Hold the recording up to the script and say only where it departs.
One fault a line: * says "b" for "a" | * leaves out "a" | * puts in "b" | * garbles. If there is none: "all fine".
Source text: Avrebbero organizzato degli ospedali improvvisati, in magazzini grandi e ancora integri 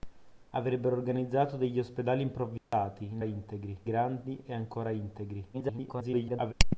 * says "integri" for "magazzini"
* garbles